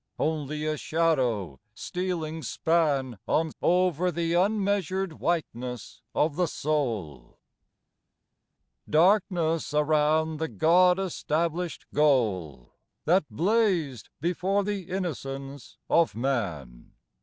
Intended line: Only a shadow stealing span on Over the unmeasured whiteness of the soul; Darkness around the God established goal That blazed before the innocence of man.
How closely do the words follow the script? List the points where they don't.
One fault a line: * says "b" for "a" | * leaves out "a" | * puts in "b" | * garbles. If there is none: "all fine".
all fine